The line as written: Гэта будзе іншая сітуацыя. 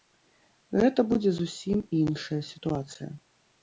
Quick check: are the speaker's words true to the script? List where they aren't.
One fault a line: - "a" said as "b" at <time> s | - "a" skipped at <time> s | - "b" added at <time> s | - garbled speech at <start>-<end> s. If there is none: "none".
- "зусім" added at 1.4 s